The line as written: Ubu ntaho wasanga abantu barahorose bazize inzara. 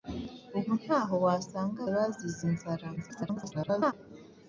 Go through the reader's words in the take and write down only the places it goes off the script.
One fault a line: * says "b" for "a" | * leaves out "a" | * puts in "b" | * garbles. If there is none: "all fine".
* leaves out "abantu barahorose"
* garbles